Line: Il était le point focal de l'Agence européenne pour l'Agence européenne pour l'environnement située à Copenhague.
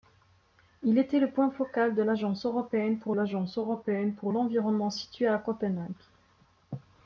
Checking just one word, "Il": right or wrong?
right